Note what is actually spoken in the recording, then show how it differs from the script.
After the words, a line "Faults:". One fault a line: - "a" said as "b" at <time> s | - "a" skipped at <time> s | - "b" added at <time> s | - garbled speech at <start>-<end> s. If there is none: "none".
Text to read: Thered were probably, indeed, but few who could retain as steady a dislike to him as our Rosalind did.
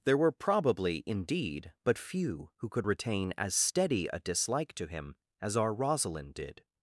There were probably, indeed, but few who could retain as steady a dislike to him as our Rosalind did.
Faults:
- "Thered" said as "There" at 0.0 s